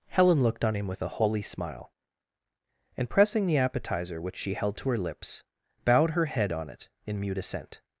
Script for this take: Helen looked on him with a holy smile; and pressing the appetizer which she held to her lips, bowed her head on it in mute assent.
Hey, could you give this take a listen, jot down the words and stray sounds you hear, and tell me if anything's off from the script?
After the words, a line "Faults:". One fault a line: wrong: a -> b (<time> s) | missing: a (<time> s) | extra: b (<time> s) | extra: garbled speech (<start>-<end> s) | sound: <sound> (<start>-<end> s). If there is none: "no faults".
Helen looked on him with a holy smile; and pressing the appetizer which she held to her lips, bowed her head on it in mute assent.
Faults:
no faults